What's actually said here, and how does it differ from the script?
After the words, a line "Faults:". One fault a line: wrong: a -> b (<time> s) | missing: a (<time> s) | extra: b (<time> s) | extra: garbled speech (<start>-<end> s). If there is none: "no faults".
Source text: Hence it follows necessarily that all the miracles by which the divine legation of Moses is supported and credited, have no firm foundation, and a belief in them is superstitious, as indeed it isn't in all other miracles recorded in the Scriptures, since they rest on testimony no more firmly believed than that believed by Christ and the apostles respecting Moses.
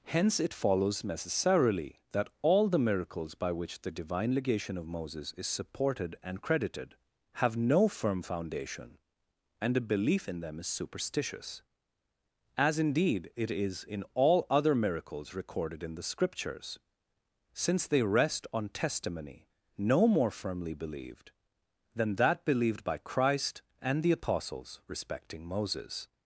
Hence it follows necessarily that all the miracles by which the divine legation of Moses is supported and credited, have no firm foundation, and a belief in them is superstitious, as indeed it is in all other miracles recorded in the Scriptures, since they rest on testimony no more firmly believed than that believed by Christ and the apostles respecting Moses.
Faults:
wrong: isn't -> is (13.5 s)